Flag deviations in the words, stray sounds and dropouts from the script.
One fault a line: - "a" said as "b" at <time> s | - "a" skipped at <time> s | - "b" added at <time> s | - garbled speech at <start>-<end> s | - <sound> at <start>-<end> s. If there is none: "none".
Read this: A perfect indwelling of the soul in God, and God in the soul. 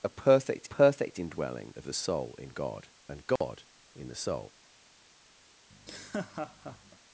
- "perfect" added at 0.6 s
- dropout at 3.4-3.4 s
- laugh at 5.7-7.0 s